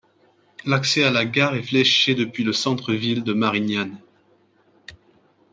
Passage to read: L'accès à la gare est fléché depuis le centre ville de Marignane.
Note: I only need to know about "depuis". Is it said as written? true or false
true